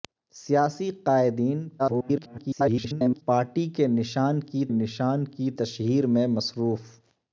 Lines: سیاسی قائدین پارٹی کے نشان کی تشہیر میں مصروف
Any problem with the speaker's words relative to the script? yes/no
yes